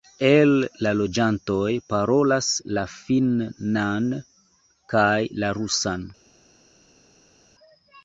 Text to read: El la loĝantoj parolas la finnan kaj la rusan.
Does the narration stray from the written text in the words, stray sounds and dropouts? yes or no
no